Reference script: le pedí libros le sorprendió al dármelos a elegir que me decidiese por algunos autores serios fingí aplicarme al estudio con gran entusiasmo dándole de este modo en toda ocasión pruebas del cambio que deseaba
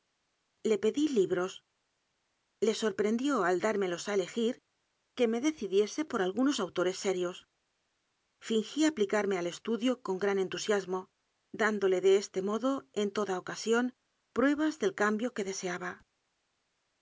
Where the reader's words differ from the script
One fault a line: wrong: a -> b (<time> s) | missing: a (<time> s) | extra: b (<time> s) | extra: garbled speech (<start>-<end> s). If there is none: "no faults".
no faults